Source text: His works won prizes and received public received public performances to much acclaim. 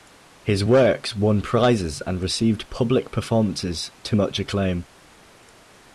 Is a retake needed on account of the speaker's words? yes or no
yes